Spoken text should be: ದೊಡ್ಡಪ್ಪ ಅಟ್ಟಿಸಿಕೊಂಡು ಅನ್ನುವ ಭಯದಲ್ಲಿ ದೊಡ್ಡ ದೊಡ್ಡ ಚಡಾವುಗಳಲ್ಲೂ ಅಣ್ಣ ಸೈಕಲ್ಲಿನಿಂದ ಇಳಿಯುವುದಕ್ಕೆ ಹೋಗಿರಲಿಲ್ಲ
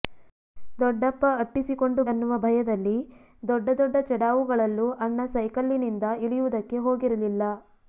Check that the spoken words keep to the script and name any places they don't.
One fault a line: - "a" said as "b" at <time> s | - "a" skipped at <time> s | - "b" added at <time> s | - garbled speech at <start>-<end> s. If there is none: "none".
none